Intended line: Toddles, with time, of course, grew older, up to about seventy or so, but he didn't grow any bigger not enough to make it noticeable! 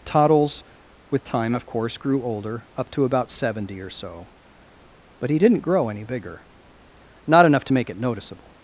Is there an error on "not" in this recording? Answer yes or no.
no